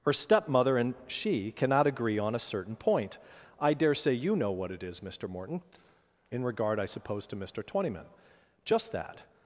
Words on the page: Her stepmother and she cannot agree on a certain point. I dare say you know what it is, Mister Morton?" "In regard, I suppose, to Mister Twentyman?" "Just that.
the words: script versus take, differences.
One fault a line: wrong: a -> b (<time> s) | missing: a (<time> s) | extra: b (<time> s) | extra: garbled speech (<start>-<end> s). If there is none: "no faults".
no faults